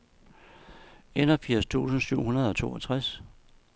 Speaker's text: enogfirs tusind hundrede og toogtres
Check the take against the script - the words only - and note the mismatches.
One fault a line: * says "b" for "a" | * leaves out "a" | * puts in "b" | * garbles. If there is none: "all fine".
* puts in "syv"